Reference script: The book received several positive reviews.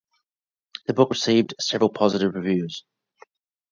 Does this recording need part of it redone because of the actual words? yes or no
no